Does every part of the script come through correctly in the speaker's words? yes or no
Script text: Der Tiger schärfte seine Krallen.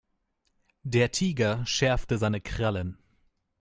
yes